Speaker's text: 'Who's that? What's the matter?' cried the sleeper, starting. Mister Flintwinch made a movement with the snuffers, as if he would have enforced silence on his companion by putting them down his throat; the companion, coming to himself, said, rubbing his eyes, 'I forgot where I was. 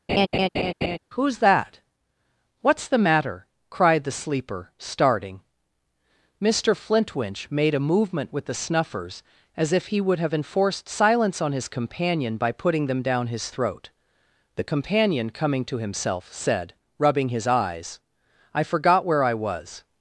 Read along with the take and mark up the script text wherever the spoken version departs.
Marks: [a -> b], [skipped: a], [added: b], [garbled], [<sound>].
[laugh] 'Who's that? What's the matter?' cried the sleeper, starting. Mister Flintwinch made a movement with the snuffers, as if he would have enforced silence on his companion by putting them down his throat; the companion, coming to himself, said, rubbing his eyes, 'I forgot where I was.